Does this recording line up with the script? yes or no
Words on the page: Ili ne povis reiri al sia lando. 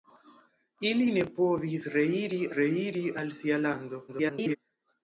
no